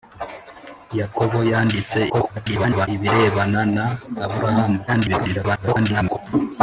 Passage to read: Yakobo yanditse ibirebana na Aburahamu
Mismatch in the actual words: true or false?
true